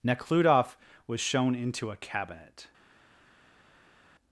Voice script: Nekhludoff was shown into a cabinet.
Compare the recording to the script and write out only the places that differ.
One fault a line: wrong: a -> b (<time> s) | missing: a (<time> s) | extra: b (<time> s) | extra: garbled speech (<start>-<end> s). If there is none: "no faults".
no faults